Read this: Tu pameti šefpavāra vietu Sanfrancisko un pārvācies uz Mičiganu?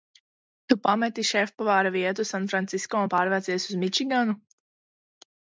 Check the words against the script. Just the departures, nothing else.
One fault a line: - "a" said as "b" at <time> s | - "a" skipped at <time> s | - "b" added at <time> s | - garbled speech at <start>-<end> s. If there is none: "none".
none